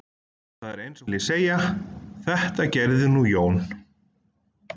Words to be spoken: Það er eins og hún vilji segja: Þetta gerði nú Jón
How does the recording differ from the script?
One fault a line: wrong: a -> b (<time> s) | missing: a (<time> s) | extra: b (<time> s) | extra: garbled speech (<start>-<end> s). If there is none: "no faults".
missing: hún (1.1 s)